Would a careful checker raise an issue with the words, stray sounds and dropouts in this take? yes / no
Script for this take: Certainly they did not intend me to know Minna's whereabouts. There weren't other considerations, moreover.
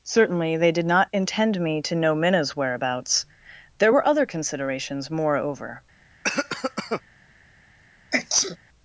yes